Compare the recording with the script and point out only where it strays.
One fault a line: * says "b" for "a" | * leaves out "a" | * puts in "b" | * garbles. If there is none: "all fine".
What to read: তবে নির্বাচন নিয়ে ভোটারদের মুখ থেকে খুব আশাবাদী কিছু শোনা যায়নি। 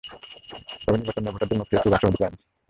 * leaves out "কিছু শোনা"